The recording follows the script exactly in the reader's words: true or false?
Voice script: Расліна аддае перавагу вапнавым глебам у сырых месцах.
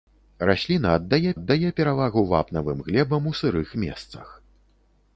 false